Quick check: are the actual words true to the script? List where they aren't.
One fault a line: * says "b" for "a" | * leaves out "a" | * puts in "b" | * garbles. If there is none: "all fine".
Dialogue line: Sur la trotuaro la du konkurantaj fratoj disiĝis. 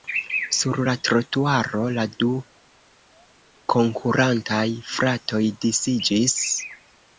all fine